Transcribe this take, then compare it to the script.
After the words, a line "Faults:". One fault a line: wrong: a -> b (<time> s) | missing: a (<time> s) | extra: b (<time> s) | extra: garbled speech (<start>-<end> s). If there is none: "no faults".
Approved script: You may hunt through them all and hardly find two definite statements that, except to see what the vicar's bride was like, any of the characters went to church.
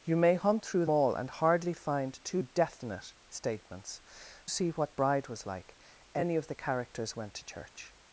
You may hunt through all and hardly find two definite statements see what bride was like, any of the characters went to church.
Faults:
missing: them (0.9 s)
missing: that except to (4.0 s)
missing: the vicar's (4.9 s)